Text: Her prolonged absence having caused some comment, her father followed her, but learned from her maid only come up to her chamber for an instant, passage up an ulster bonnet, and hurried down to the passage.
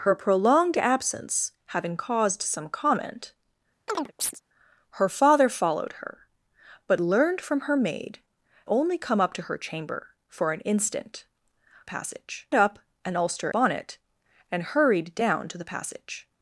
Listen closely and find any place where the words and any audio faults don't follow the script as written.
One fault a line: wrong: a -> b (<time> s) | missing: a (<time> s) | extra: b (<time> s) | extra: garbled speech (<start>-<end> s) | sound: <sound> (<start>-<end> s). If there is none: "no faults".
sound: chirp (3.9-4.4 s)